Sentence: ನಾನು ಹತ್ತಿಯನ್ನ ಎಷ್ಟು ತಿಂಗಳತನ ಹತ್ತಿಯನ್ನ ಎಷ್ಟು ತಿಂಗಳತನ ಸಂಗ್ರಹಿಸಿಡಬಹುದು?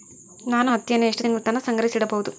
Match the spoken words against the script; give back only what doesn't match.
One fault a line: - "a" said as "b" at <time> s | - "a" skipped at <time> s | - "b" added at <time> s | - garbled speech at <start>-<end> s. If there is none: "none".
- "ಹತ್ತಿಯನ್ನ ಎಷ್ಟು ತಿಂಗಳತನ" skipped at 1.6 s